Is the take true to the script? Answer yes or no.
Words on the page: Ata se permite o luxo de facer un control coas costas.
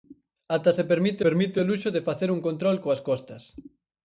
no